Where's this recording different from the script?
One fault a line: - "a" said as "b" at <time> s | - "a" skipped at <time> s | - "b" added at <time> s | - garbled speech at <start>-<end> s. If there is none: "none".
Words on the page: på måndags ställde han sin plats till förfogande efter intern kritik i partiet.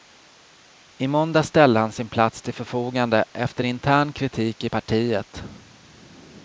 - "på" said as "I" at 1.0 s